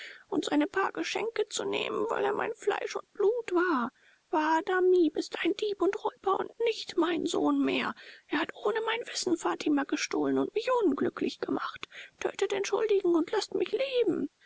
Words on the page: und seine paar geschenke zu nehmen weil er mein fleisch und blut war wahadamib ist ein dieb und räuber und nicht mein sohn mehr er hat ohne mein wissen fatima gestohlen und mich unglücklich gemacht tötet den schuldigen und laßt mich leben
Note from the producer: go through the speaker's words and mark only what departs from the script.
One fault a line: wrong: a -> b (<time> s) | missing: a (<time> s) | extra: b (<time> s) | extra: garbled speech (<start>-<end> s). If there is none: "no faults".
no faults